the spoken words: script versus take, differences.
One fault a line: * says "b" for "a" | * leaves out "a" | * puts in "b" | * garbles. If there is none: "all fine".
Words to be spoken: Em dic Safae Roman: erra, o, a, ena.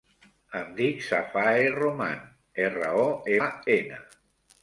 all fine